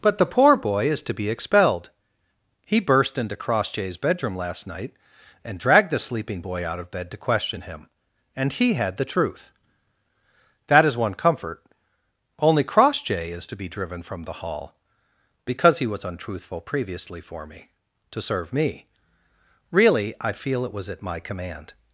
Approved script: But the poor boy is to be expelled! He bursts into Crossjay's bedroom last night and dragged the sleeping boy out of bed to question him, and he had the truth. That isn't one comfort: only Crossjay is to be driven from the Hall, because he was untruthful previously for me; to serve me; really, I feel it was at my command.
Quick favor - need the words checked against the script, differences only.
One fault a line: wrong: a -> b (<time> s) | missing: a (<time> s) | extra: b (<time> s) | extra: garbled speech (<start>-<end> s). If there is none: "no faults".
wrong: bursts -> burst (2.8 s)
wrong: isn't -> is (10.9 s)